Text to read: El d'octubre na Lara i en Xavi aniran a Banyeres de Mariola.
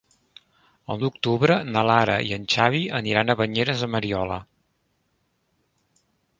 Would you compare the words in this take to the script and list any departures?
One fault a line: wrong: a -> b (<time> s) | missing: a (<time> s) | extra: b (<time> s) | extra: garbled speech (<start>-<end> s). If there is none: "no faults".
no faults